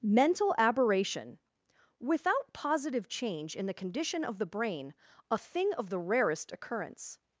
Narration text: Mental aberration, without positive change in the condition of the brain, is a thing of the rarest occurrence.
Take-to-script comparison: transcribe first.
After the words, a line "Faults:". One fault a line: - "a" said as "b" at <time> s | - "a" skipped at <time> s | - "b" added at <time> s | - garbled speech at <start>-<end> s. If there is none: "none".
Mental aberration, without positive change in the condition of the brain, a thing of the rarest occurrence.
Faults:
- "is" skipped at 5.0 s